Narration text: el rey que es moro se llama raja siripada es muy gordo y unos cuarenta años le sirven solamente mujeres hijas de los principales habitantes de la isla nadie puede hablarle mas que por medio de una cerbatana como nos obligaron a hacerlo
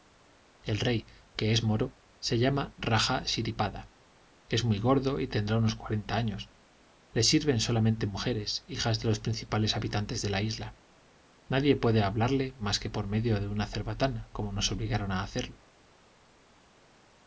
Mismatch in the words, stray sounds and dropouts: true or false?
true